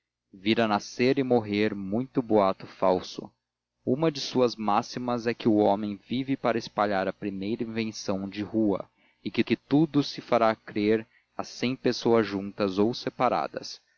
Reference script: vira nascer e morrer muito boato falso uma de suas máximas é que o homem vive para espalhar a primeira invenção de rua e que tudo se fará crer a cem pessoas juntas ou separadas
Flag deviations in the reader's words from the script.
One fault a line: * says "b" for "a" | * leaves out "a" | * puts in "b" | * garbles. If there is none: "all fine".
* puts in "que"